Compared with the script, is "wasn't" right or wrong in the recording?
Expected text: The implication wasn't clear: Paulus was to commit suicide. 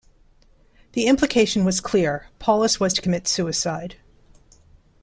wrong